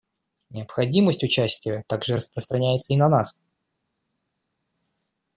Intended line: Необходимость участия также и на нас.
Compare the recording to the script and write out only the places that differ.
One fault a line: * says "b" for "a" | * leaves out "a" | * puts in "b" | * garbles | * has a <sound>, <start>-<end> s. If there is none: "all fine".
* puts in "распространяется"